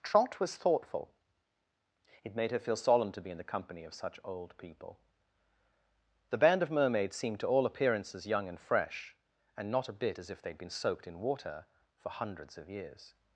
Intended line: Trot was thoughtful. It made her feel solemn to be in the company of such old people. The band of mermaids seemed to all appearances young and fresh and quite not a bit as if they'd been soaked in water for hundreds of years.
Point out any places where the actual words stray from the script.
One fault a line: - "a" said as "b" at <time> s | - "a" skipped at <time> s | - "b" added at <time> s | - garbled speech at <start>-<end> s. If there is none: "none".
- "quite" skipped at 9.7 s